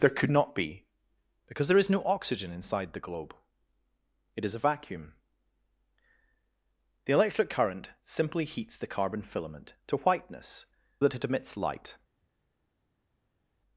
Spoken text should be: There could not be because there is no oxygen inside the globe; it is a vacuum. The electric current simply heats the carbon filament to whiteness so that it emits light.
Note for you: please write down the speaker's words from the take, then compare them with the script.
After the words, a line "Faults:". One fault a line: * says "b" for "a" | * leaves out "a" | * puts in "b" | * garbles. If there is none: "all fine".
There could not be because there is no oxygen inside the globe; it is a vacuum. The electric current simply heats the carbon filament to whiteness that it emits light.
Faults:
* leaves out "so"